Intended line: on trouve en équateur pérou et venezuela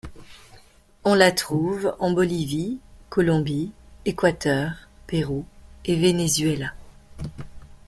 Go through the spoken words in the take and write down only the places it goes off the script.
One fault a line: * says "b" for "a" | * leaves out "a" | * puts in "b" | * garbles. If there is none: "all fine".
* puts in "la"
* puts in "bolivie colombie"